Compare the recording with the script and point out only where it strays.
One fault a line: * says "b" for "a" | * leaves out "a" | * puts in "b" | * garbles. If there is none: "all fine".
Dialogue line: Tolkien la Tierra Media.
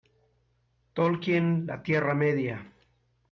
all fine